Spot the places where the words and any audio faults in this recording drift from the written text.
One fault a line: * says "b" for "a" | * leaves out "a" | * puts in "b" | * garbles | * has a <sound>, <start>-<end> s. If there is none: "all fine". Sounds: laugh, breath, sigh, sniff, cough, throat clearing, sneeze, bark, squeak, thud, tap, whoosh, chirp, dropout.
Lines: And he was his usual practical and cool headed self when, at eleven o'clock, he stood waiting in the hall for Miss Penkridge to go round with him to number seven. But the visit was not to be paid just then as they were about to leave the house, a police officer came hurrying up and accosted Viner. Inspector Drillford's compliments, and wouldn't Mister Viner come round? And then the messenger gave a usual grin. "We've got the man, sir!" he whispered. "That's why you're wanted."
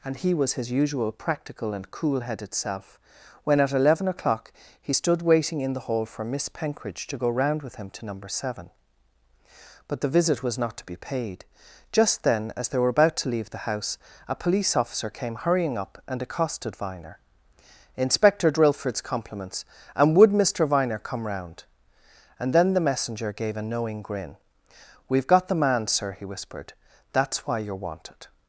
* says "would" for "wouldn't"
* says "knowing" for "usual"